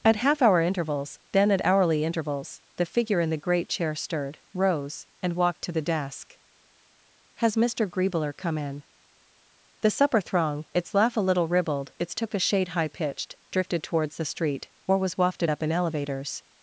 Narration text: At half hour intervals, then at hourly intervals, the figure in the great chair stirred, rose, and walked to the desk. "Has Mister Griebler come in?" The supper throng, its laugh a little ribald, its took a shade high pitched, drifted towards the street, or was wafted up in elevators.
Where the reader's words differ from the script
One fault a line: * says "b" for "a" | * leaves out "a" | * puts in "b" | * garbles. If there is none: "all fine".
all fine